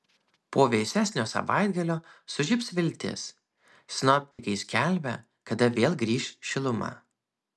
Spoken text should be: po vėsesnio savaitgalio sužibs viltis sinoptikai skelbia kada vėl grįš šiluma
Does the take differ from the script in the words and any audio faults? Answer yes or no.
yes